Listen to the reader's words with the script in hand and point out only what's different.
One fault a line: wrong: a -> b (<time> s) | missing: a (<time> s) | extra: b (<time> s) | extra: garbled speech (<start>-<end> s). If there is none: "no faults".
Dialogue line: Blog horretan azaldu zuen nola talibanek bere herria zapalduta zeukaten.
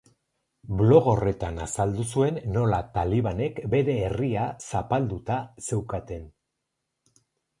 no faults